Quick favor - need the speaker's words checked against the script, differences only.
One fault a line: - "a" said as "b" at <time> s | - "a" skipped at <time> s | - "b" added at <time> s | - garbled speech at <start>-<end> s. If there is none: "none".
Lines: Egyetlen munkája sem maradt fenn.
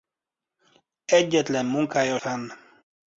- "sem maradt" skipped at 2.2 s